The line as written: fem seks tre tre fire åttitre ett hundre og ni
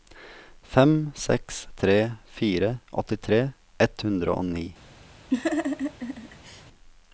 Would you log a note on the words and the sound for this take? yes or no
yes